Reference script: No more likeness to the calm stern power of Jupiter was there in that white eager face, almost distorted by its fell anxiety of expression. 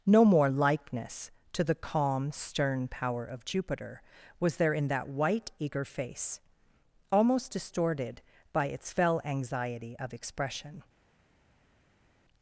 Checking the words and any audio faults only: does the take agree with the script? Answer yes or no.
yes